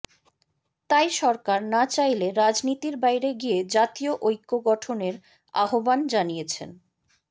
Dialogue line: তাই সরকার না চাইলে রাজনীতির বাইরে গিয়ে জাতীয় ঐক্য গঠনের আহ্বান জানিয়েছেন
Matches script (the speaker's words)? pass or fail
pass